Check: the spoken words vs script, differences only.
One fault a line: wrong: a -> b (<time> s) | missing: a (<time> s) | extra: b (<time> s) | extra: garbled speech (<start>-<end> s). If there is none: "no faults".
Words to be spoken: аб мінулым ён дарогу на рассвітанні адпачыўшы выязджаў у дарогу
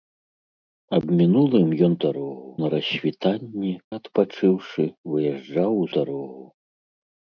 no faults